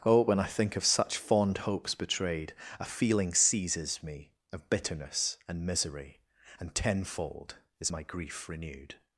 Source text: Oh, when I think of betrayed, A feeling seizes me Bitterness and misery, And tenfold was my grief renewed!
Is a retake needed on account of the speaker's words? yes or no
yes